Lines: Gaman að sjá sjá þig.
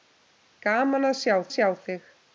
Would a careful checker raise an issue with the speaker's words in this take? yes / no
no